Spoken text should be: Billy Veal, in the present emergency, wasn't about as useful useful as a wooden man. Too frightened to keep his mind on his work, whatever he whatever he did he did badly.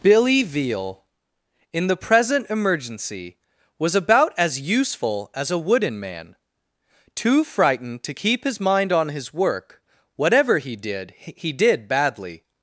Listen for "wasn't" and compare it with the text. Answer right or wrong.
wrong